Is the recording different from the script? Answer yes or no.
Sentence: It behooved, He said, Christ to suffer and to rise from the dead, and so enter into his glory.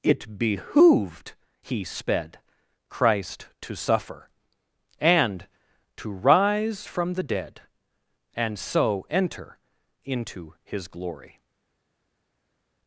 yes